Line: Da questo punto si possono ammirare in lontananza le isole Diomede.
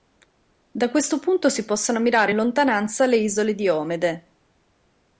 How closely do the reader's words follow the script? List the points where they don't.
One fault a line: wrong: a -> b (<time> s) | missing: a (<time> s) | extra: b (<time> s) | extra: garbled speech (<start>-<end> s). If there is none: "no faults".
no faults